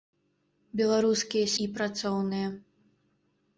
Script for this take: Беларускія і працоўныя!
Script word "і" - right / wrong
right